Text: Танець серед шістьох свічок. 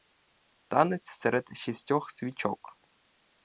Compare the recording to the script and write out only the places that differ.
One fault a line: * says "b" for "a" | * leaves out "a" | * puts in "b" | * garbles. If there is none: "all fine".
all fine